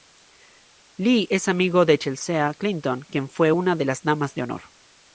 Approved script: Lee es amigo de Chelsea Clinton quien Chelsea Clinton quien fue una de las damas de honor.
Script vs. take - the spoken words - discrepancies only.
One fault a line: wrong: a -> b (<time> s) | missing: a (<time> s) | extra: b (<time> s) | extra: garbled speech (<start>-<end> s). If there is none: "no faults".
missing: Chelsea Clinton quien (3.3 s)